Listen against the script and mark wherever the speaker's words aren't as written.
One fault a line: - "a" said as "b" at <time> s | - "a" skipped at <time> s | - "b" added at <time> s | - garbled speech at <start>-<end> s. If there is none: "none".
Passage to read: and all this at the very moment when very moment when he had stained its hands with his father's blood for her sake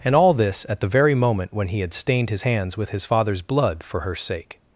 - "very moment when" skipped at 1.7 s
- "its" said as "his" at 2.3 s